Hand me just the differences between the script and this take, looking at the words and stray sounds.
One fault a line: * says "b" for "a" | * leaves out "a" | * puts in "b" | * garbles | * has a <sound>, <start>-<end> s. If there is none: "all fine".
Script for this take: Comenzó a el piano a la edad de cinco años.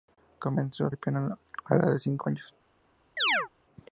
* has a chirp, 3.2-3.5 s